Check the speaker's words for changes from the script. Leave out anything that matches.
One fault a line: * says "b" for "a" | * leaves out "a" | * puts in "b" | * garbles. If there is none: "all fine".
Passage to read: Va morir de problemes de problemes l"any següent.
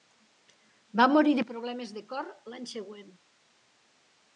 * says "cor" for "problemes"